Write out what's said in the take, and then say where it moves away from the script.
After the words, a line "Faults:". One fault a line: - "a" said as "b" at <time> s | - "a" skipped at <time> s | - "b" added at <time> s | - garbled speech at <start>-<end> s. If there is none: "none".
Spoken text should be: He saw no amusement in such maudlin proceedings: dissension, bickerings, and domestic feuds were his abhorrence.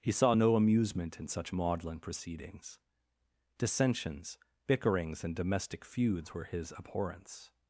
He saw no amusement in such maudlin proceedings: dissensions, bickerings, and domestic feuds were his abhorrence.
Faults:
- "dissension" said as "dissensions" at 3.6 s